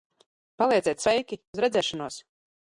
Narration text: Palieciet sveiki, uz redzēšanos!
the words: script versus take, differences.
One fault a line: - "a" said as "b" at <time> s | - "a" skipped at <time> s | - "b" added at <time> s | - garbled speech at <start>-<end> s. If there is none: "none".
none